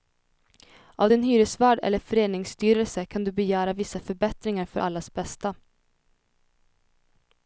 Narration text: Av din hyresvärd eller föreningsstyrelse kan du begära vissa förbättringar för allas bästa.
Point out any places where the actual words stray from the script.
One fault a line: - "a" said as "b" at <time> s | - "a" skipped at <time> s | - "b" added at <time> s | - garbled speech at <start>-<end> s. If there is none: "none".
none